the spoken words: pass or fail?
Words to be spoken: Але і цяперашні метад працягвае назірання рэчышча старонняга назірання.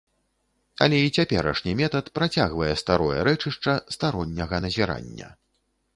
fail